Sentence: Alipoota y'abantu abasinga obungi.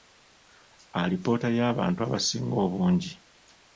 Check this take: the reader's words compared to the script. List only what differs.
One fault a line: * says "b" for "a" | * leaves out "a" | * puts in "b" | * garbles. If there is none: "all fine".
all fine